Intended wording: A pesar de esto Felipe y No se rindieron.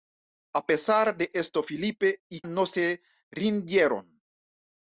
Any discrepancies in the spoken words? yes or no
no